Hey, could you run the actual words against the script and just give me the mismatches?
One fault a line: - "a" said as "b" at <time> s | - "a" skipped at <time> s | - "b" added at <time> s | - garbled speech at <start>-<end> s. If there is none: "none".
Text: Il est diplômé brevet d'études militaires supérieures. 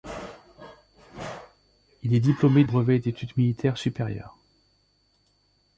none